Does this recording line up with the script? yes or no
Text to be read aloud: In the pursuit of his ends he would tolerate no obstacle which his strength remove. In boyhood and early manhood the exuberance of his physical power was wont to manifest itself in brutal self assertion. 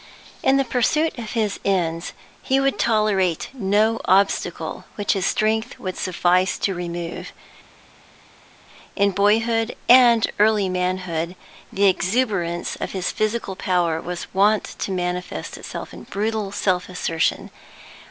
no